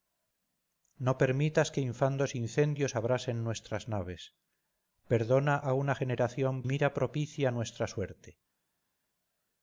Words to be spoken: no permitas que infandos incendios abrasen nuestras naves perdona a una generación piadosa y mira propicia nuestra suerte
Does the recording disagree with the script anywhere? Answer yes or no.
yes